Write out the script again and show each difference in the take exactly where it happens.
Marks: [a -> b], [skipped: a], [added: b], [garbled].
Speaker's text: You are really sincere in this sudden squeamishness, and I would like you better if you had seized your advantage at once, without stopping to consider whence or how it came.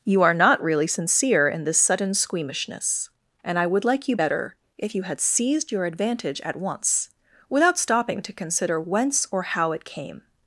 You are [added: not] really sincere in this sudden squeamishness, and I would like you better if you had seized your advantage at once, without stopping to consider whence or how it came.